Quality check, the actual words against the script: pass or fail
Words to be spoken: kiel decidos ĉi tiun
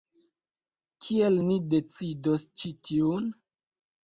fail